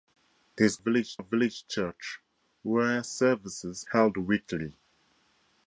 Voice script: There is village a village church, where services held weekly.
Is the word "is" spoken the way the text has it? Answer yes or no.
yes